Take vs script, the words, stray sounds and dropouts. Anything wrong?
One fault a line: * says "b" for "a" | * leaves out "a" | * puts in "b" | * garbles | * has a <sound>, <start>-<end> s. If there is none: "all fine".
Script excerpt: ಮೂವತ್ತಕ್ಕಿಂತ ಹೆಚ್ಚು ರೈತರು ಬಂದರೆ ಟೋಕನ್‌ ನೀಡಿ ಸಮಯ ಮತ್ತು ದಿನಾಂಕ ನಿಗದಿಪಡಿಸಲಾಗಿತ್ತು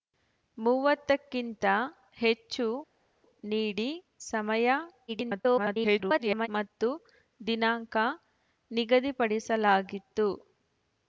* leaves out "ರೈತರು ಬಂದರೆ ಟೋಕನ್"
* garbles